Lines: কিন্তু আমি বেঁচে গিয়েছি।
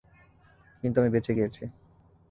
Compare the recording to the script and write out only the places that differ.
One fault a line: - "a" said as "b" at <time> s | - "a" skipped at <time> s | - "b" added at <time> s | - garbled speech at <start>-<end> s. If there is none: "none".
none